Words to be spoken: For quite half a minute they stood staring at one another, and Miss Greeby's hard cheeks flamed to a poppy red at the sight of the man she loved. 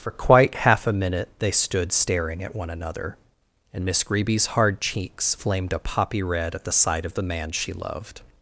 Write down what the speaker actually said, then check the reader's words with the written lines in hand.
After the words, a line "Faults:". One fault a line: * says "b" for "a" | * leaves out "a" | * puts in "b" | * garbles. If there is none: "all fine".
For quite half a minute they stood staring at one another, and Miss Greeby's hard cheeks flamed a poppy red at the sight of the man she loved.
Faults:
* leaves out "to"